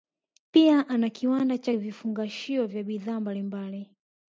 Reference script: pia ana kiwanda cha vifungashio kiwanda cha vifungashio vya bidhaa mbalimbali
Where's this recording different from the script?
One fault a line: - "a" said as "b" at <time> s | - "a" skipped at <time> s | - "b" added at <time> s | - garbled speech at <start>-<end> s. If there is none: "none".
- "kiwanda cha vifungashio" skipped at 2.7 s